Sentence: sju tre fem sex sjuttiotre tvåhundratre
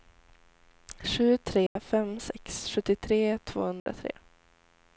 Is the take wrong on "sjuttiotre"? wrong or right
right